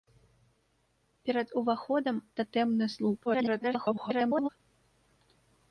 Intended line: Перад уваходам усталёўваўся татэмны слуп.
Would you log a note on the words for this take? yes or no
yes